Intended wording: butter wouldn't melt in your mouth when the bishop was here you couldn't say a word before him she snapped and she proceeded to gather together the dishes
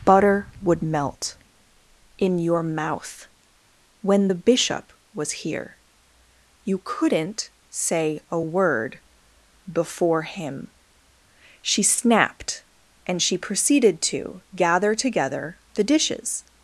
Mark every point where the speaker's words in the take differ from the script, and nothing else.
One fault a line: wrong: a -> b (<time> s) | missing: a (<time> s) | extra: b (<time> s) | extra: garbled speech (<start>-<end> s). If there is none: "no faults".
wrong: wouldn't -> would (0.6 s)